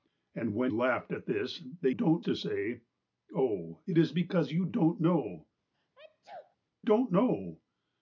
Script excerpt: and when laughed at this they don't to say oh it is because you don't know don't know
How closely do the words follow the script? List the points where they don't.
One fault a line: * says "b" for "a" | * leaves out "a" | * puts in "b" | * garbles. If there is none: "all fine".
all fine